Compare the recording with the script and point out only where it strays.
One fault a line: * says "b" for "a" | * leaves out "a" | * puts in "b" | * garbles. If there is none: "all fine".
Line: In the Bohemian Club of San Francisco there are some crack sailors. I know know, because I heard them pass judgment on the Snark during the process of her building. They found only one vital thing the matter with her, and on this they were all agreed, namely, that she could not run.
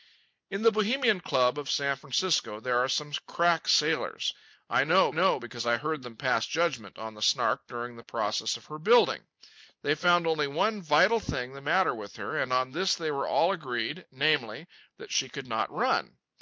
all fine